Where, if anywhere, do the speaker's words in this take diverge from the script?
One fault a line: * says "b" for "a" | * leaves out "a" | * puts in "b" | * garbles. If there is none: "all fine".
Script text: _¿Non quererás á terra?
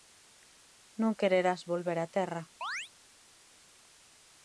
* puts in "volver"